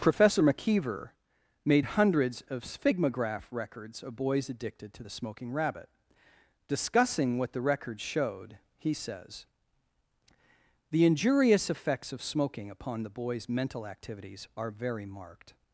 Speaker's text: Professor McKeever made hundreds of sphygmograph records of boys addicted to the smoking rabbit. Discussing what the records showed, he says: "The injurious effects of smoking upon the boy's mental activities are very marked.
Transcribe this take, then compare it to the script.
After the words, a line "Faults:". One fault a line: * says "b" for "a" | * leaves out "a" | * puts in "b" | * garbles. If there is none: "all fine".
Professor McKeever made hundreds of sphygmograph records of boys addicted to the smoking rabbit. Discussing what the records showed, he says: "The injurious effects of smoking upon the boy's mental activities are very marked.
Faults:
all fine